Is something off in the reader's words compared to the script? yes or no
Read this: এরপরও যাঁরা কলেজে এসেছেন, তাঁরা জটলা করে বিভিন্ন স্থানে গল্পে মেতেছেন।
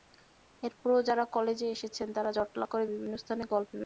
no